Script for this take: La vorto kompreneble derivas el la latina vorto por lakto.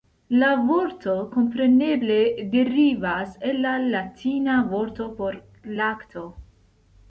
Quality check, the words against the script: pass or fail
pass